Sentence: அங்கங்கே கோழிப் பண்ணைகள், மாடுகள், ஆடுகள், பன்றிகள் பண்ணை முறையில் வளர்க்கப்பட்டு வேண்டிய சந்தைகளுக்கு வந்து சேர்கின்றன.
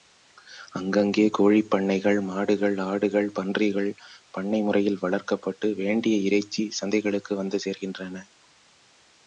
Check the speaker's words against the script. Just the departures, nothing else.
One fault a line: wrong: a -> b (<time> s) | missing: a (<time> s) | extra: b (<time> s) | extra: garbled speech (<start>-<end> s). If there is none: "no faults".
extra: இறைச்சி (6.3 s)